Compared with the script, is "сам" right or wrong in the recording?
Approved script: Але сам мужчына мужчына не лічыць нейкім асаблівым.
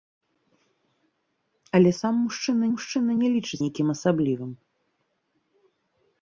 right